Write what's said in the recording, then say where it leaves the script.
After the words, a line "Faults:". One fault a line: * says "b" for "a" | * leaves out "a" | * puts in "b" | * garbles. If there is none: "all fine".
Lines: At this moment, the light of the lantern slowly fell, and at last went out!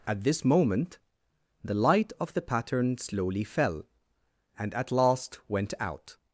At this moment, the light of the pattern slowly fell, and at last went out!
Faults:
* says "pattern" for "lantern"